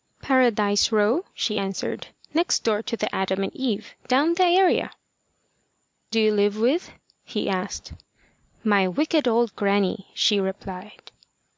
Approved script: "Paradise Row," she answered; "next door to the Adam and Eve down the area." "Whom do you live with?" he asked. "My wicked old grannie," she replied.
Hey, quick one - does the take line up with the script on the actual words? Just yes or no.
no